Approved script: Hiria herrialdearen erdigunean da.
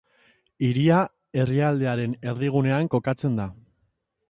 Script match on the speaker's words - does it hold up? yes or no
no